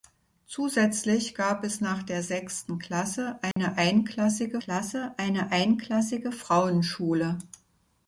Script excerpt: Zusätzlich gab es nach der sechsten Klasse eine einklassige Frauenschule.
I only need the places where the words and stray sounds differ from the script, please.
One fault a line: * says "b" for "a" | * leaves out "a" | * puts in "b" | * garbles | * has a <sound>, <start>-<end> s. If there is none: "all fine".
* has a dropout, 3.5-3.6 s
* puts in "Klasse eine einklassige"